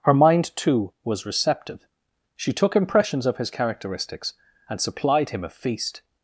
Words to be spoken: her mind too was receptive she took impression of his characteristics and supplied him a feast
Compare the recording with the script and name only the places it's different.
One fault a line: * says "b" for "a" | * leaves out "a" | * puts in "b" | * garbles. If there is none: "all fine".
* says "impressions" for "impression"